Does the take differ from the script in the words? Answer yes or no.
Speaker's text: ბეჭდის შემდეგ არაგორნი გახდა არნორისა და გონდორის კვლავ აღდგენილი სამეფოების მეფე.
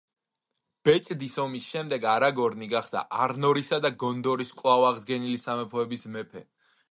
yes